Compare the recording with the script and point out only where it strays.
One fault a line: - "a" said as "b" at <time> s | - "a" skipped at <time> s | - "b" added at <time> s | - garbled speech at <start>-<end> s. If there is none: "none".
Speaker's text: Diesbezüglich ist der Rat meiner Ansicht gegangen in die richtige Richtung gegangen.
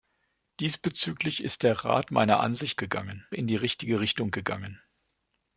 none